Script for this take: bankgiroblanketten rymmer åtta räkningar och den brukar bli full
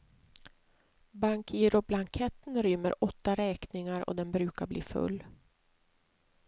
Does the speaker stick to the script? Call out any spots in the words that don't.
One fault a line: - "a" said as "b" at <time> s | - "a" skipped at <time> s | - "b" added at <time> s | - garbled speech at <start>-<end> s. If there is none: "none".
none